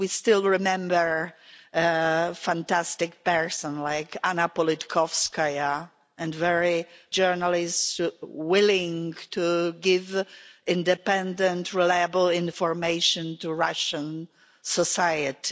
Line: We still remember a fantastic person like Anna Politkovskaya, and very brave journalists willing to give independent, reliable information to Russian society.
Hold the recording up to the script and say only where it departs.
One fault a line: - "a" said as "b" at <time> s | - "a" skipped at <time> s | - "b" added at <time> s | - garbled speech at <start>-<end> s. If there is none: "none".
- "brave" skipped at 6.9 s